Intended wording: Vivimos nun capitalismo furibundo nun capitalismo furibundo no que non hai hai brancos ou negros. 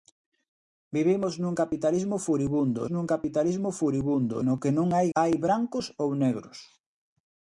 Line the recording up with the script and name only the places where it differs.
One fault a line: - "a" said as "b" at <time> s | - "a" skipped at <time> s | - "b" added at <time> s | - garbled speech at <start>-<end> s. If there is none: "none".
none